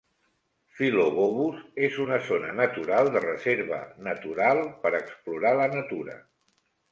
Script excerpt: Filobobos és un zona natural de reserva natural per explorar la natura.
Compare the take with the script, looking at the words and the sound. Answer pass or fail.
fail